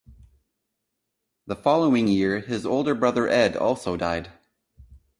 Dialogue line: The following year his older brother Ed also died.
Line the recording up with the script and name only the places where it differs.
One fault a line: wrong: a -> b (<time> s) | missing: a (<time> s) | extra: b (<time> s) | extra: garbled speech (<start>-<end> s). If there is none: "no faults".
no faults